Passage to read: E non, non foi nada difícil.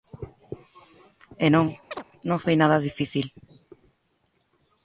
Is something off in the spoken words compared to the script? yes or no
no